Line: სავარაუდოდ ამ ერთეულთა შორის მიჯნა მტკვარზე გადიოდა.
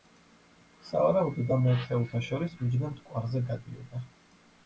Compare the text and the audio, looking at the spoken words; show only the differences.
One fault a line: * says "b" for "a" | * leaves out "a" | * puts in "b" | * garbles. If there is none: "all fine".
all fine